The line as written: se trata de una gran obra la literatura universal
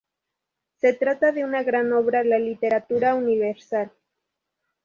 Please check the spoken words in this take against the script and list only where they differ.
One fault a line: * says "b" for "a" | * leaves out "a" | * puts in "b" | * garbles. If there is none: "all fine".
all fine